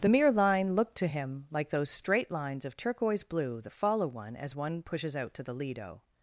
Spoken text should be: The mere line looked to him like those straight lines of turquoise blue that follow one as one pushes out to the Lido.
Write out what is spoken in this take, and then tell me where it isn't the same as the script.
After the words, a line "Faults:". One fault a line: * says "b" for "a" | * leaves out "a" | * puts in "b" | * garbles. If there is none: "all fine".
The mere line looked to him like those straight lines of turquoise blue that follow one as one pushes out to the Lido.
Faults:
all fine